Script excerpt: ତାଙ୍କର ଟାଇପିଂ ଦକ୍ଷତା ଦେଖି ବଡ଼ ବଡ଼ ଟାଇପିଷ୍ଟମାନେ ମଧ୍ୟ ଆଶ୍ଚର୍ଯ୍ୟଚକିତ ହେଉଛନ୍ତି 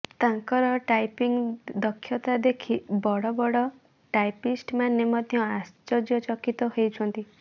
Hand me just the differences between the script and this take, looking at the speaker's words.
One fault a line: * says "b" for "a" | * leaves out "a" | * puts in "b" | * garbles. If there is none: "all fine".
all fine